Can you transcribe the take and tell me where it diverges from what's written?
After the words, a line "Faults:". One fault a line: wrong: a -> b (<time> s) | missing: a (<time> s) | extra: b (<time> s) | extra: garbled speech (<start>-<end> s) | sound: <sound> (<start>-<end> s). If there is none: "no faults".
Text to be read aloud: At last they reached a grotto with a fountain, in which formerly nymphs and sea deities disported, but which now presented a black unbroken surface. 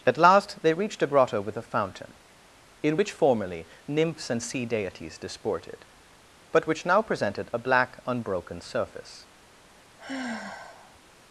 At last they reached a grotto with a fountain, in which formerly nymphs and sea deities disported, but which now presented a black unbroken surface.
Faults:
sound: sigh (10.0-11.0 s)